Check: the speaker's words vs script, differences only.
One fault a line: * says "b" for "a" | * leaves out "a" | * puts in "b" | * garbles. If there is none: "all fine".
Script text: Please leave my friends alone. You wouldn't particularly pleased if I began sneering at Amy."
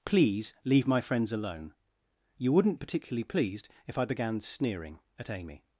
all fine